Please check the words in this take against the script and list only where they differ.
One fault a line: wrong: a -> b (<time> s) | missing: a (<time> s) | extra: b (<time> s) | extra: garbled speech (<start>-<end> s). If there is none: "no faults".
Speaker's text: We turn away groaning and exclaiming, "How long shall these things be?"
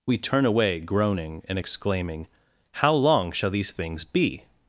no faults